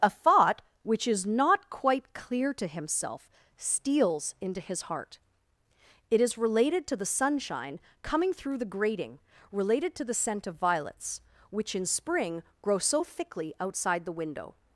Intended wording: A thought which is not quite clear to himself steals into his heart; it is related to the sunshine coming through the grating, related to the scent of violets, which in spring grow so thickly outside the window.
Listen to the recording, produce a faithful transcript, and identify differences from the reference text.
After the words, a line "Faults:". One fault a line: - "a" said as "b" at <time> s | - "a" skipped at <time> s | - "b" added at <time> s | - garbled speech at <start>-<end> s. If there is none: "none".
A thought which is not quite clear to himself steals into his heart; it is related to the sunshine coming through the grating, related to the scent of violets, which in spring grow so thickly outside the window.
Faults:
none